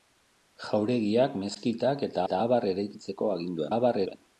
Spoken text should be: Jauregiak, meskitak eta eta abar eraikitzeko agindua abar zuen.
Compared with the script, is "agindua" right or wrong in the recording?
right